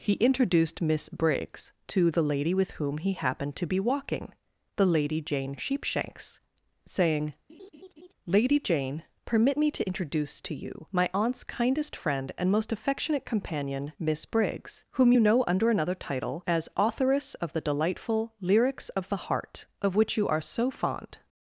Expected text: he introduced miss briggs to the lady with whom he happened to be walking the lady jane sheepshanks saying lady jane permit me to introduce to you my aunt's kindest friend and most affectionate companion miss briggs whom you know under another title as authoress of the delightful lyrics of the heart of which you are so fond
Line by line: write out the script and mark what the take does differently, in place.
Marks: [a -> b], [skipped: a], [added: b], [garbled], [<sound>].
he introduced miss briggs to the lady with whom he happened to be walking the lady jane sheepshanks saying [laugh] lady jane permit me to introduce to you my aunt's kindest friend and most affectionate companion miss briggs whom you know under another title as authoress of the delightful lyrics of the heart of which you are so fond